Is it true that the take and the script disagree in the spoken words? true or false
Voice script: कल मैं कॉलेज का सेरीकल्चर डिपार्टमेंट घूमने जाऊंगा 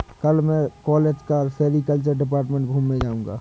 false